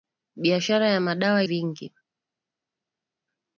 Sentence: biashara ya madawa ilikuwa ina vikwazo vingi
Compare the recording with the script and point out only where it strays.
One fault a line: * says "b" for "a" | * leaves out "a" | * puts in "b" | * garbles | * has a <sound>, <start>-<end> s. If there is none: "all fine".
* leaves out "ilikuwa ina vikwazo"